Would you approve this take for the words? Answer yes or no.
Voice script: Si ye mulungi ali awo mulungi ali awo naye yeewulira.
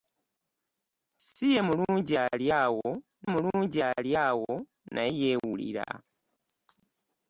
yes